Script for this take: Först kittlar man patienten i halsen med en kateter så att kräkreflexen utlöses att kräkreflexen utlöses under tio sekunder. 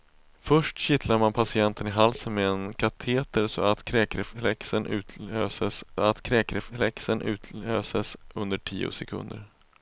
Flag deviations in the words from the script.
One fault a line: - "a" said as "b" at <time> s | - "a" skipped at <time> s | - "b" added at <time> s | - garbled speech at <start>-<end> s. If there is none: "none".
none